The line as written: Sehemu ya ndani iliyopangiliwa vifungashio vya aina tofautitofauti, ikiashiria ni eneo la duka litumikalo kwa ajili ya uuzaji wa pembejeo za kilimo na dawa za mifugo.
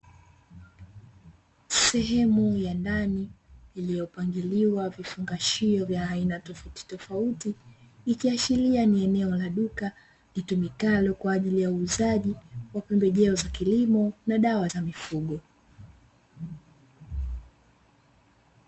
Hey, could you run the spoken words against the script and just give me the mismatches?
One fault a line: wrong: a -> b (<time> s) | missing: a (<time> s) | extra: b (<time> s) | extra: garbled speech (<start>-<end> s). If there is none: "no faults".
no faults